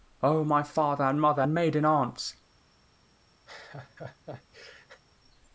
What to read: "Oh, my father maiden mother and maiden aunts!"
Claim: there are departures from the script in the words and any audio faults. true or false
true